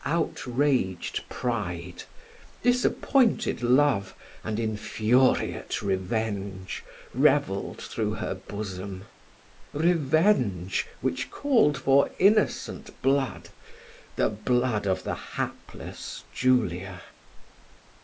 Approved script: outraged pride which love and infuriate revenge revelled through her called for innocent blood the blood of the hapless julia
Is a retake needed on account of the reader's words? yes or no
yes